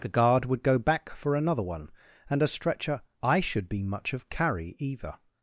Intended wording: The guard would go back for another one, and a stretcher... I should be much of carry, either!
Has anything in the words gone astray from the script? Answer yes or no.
no